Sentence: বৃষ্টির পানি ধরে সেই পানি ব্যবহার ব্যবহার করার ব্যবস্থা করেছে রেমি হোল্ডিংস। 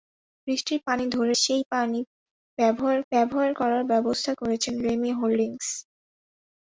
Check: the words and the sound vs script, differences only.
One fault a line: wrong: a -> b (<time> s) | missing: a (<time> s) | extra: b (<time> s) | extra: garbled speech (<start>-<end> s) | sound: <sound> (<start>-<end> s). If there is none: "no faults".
no faults